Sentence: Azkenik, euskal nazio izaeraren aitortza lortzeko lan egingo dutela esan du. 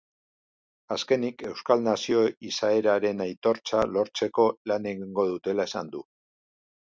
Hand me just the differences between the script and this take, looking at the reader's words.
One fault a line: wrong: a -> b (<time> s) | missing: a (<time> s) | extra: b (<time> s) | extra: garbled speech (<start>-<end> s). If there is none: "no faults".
no faults